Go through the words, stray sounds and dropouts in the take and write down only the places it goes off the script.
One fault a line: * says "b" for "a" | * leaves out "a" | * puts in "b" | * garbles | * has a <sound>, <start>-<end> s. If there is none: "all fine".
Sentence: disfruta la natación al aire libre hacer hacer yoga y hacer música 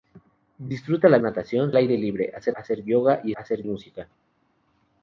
all fine